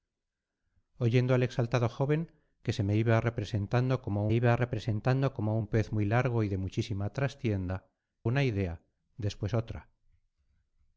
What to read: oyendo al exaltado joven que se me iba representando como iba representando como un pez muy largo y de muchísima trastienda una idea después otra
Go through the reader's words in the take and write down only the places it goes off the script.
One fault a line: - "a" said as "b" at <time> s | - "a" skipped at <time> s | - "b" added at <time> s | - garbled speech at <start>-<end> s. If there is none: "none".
none